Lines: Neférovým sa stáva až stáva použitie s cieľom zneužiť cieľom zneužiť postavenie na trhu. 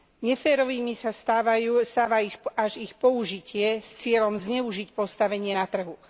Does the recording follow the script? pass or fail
fail